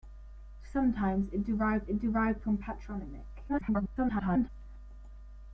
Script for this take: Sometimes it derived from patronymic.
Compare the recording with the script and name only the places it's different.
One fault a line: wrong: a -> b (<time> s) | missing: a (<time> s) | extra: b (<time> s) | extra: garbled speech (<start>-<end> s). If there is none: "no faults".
extra: it derived (1.9 s)
extra: garbled speech (3.5-4.5 s)